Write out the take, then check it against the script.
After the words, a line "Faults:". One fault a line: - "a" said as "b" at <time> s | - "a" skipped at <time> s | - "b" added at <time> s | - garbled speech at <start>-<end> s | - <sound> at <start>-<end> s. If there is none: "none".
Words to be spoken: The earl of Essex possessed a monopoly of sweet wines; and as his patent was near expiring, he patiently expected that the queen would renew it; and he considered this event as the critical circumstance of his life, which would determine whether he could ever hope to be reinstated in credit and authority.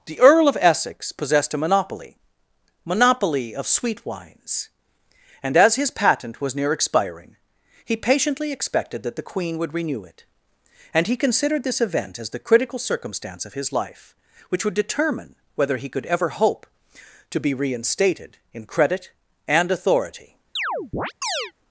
The earl of Essex possessed a monopoly monopoly of sweet wines; and as his patent was near expiring, he patiently expected that the queen would renew it; and he considered this event as the critical circumstance of his life, which would determine whether he could ever hope to be reinstated in credit and authority.
Faults:
- "monopoly" added at 2.9 s
- chirp at 20.6-21.5 s